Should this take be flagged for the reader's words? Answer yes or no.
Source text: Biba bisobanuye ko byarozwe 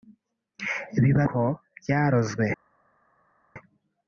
yes